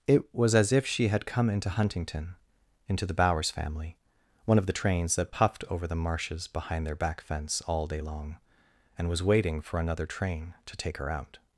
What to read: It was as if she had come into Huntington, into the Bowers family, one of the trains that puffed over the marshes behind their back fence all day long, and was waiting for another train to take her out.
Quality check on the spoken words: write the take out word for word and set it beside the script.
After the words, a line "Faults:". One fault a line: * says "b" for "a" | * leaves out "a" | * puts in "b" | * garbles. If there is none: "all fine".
It was as if she had come into Huntington, into the Bowers family, one of the trains that puffed over the marshes behind their back fence all day long, and was waiting for another train to take her out.
Faults:
all fine